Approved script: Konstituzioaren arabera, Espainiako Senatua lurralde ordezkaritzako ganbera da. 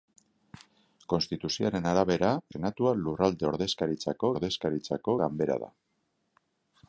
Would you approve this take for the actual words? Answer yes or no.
no